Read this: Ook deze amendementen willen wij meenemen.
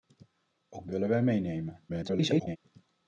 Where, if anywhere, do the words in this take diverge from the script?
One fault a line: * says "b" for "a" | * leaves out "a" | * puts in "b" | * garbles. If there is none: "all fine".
* leaves out "deze amendementen"
* garbles